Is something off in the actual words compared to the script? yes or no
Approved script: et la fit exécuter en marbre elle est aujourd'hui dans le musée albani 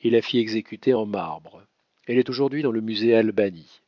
no